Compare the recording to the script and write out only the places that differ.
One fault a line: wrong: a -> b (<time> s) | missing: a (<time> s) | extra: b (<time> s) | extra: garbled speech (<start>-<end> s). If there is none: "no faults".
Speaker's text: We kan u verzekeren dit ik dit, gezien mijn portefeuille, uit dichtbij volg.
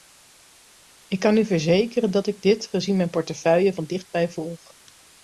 wrong: We -> Ik (1.1 s)
wrong: dit -> dat (2.1 s)
wrong: uit -> van (3.7 s)